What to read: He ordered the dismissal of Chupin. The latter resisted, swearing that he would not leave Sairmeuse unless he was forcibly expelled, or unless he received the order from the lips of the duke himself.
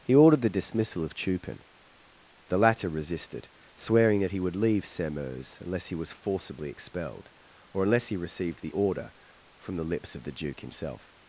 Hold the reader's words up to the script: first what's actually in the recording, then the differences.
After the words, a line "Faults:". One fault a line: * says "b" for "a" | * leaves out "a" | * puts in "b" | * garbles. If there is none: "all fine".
He ordered the dismissal of Chupin. The latter resisted, swearing that he would leave Sairmeuse unless he was forcibly expelled, or unless he received the order from the lips of the duke himself.
Faults:
* leaves out "not"